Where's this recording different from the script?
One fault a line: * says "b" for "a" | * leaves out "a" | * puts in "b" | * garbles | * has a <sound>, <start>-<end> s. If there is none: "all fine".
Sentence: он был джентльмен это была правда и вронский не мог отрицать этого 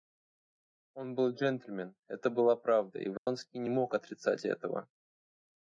* has a dropout, 3.2-3.3 s